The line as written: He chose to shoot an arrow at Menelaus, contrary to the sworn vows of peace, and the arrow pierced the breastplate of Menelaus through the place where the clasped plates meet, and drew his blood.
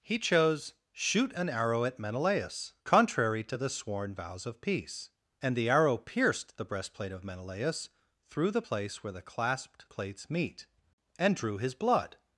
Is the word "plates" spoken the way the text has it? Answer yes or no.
yes